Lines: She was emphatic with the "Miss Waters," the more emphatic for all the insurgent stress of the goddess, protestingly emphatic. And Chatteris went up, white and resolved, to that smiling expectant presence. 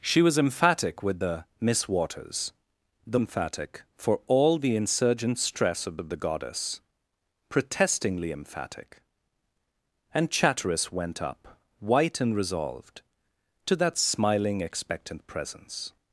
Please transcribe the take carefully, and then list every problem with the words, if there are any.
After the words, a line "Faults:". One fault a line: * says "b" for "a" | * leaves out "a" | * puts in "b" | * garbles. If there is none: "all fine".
She was emphatic with the "Miss Waters," the emphatic for all the insurgent stress of of the goddess, protestingly emphatic. And Chatteris went up, white and resolved, to that smiling expectant presence.
Faults:
* leaves out "more"
* puts in "of"